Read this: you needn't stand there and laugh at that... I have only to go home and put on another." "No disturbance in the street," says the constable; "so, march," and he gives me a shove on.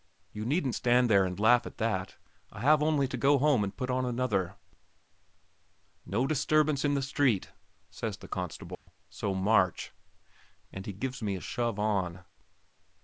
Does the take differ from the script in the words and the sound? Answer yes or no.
yes